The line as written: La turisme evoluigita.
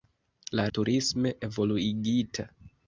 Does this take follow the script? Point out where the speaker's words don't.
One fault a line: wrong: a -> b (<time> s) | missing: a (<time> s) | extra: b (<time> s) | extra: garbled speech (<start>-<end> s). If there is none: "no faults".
no faults